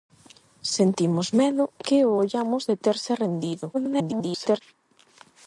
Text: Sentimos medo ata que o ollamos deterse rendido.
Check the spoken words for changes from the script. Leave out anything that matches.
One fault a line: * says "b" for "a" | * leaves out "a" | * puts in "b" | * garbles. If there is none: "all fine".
* leaves out "ata"
* garbles